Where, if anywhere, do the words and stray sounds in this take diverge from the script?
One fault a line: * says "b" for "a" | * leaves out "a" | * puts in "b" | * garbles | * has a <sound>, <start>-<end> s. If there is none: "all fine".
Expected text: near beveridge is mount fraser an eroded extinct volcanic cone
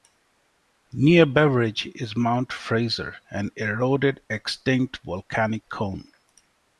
all fine